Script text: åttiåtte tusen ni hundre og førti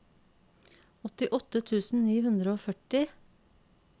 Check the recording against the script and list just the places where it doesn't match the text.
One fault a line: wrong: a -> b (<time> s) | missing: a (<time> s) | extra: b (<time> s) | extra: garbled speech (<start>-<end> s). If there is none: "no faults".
no faults